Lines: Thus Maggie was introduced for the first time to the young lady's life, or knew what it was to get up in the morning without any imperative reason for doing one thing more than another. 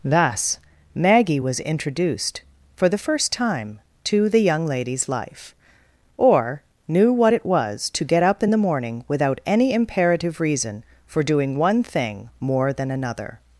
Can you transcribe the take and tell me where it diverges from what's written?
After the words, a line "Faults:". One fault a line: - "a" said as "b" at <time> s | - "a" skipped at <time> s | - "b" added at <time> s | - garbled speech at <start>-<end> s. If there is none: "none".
Thus Maggie was introduced for the first time to the young lady's life, or knew what it was to get up in the morning without any imperative reason for doing one thing more than another.
Faults:
none